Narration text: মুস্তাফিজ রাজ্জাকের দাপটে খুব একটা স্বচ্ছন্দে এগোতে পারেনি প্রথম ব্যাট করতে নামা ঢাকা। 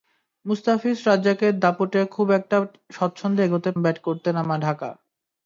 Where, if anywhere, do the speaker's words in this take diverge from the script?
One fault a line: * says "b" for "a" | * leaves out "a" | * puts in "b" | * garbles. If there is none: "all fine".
* leaves out "পারেনি প্রথম"